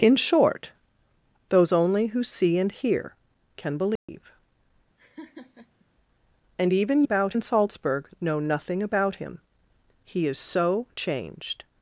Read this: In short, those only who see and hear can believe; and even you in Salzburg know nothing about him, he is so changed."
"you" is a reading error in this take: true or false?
true